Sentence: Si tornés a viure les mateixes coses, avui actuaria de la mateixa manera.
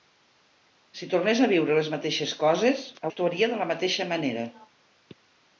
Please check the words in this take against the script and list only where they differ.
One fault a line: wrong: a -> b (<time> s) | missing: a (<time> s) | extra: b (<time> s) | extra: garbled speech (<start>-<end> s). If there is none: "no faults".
missing: avui (2.8 s)